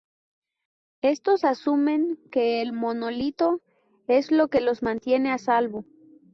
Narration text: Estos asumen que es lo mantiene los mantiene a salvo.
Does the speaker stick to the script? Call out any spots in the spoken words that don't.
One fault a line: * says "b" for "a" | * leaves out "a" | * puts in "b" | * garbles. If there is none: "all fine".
* puts in "el monolito"
* says "que" for "mantiene"